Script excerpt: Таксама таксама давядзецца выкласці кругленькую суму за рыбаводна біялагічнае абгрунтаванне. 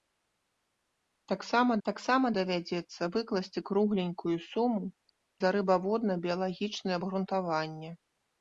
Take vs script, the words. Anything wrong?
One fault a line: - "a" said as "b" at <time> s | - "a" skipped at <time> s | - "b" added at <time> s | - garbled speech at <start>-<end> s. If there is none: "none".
none